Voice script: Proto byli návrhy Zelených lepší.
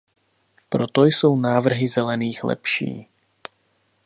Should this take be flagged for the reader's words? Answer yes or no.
yes